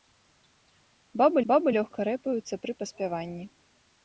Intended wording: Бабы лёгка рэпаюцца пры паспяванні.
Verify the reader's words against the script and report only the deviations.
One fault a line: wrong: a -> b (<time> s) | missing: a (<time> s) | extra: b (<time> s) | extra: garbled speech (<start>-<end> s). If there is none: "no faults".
extra: бабы (1.5 s)